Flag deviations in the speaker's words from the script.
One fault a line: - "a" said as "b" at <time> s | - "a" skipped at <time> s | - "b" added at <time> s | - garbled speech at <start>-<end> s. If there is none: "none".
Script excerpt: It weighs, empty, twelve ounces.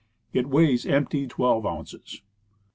none